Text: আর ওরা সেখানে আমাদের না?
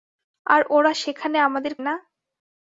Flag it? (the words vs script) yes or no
no